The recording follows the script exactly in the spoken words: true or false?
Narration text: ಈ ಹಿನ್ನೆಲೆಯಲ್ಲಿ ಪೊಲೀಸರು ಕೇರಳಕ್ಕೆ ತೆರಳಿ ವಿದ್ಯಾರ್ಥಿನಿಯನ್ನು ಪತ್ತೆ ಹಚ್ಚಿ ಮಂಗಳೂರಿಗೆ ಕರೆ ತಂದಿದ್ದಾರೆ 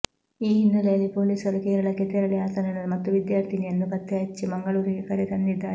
false